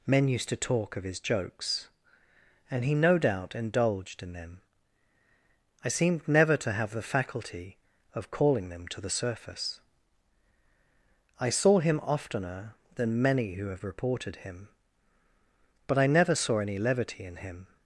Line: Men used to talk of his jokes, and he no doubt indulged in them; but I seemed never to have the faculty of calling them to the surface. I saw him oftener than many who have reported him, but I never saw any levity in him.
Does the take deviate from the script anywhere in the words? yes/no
yes